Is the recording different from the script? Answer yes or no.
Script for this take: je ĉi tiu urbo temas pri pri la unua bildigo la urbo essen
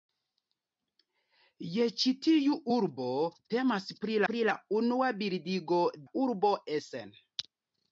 no